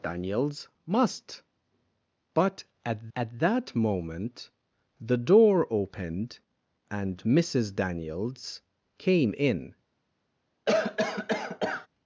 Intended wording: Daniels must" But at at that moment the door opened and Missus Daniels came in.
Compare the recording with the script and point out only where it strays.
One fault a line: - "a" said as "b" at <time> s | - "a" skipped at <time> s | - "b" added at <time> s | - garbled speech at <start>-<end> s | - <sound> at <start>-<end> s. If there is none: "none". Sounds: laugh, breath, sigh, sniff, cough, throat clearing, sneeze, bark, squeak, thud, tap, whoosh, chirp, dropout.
- cough at 10.7-11.9 s